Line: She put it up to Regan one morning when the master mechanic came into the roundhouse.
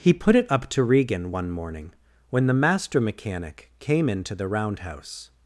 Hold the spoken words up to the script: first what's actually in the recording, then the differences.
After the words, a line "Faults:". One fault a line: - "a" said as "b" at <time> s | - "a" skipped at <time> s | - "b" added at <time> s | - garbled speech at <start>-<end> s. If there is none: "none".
He put it up to Regan one morning when the master mechanic came into the roundhouse.
Faults:
- "She" said as "He" at 0.0 s